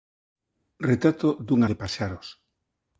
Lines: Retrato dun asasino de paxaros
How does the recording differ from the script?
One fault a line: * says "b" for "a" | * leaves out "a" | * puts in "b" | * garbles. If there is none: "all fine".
* leaves out "asasino"